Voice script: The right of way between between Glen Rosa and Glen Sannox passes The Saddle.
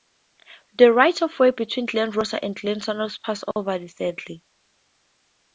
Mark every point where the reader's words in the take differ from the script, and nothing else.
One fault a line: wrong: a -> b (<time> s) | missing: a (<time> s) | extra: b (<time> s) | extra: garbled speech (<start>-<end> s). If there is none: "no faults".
missing: between (1.9 s)
extra: over (3.5 s)